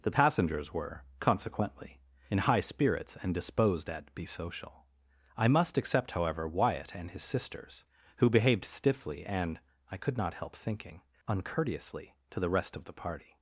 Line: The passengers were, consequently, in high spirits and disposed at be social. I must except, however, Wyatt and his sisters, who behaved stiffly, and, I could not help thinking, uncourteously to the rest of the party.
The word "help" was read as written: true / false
true